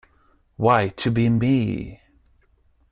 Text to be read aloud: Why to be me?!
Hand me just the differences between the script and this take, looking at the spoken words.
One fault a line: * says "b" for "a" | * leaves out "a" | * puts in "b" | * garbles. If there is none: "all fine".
all fine